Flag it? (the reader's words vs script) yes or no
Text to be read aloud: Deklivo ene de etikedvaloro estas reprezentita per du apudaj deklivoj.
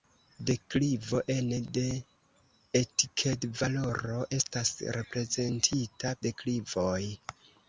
yes